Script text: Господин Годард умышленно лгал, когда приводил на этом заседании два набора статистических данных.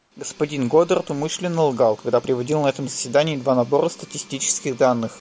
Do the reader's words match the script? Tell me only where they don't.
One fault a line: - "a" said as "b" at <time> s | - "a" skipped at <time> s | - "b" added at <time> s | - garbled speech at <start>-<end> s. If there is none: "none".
none